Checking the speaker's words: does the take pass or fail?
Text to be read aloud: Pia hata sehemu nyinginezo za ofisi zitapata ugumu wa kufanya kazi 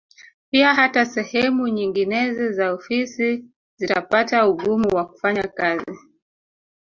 pass